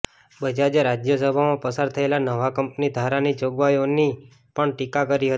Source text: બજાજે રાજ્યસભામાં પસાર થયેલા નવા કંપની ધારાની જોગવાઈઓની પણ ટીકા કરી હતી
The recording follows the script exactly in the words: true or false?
true